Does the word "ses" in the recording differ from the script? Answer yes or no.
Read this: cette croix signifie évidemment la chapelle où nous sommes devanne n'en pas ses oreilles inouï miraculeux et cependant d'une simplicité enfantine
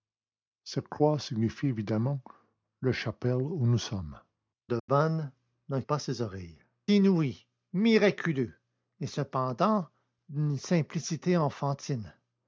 no